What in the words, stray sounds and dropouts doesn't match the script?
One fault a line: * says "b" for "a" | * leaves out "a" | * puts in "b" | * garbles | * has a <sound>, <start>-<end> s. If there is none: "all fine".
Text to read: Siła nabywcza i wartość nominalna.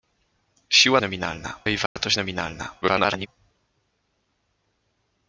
* says "nominalna" for "nabywcza"
* has a dropout, 1.9-2.0 s
* garbles